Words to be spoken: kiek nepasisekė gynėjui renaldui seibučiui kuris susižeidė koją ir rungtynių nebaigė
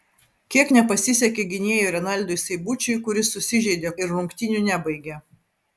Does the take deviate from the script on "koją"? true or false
true